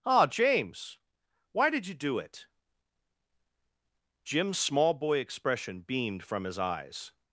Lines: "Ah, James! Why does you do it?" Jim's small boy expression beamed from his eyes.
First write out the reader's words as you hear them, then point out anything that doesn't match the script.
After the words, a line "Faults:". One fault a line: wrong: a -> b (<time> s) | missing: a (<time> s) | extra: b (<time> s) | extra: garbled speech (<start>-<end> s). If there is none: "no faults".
"Ah, James! Why did you do it?" Jim's small boy expression beamed from his eyes.
Faults:
wrong: does -> did (1.7 s)